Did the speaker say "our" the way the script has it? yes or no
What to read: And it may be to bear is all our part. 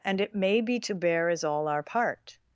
yes